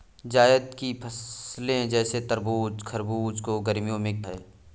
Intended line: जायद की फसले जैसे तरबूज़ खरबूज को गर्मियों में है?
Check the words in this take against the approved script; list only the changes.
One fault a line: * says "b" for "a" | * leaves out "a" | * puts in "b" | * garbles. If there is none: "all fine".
all fine